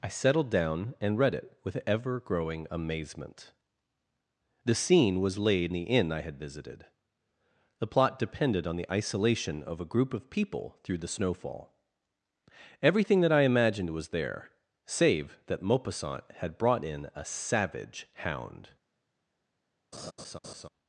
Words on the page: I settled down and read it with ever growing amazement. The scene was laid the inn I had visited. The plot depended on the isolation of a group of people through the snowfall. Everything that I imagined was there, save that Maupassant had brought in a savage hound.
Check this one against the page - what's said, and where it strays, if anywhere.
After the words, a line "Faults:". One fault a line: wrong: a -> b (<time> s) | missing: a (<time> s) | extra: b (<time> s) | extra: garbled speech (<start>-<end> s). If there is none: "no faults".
I settled down and read it with ever growing amazement. The scene was laid the inn I had visited. The plot depended on the isolation of a group of people through the snowfall. Everything that I imagined was there, save that Maupassant had brought in a savage hound.
Faults:
no faults